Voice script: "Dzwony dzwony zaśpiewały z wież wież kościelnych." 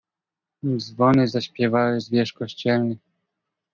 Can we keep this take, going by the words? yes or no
no